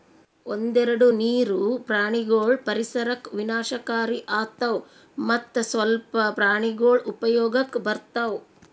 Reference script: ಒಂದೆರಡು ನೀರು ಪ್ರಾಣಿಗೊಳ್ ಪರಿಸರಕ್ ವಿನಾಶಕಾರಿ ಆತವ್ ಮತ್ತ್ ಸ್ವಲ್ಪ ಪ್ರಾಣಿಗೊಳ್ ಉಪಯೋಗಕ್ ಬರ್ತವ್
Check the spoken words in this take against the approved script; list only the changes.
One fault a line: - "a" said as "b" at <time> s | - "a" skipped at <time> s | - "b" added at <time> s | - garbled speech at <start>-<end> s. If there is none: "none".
none